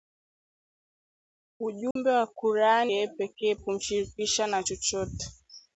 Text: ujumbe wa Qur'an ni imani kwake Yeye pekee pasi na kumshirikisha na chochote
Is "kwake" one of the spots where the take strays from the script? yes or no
yes